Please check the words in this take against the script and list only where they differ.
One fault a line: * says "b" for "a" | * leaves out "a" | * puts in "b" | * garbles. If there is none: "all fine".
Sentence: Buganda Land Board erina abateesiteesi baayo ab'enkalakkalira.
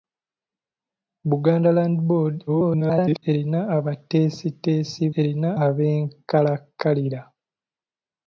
* garbles
* says "erina" for "baayo"